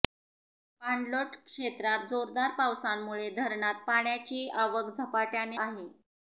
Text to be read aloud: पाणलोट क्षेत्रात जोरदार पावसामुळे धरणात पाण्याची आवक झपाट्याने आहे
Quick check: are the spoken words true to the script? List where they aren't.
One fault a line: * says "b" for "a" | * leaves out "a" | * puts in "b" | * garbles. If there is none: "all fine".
all fine